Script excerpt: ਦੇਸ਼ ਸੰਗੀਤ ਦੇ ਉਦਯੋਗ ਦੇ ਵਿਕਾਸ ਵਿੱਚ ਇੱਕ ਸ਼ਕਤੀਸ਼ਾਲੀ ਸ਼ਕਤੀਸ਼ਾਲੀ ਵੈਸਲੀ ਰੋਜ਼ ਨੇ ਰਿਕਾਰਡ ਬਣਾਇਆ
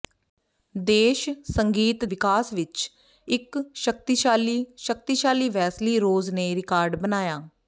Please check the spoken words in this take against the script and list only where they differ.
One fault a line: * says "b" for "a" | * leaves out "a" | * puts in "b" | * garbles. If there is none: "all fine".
* leaves out "ਦੇ ਉਦਯੋਗ ਦੇ"